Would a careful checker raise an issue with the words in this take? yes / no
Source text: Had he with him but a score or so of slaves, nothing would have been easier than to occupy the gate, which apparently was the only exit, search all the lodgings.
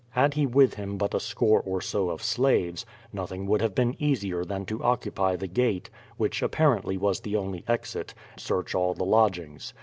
no